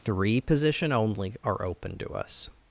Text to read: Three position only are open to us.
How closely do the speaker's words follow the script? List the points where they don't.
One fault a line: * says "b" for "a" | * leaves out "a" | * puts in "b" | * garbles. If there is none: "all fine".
all fine